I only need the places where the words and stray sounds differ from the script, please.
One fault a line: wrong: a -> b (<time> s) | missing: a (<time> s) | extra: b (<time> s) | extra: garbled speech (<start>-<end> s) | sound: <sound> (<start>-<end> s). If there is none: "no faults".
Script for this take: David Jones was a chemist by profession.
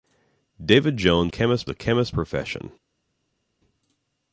wrong: was -> chemist (1.3 s)
missing: by (2.2 s)